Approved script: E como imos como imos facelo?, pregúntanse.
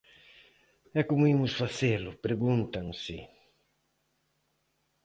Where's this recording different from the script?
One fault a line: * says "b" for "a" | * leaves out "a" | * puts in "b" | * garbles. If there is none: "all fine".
* leaves out "como imos"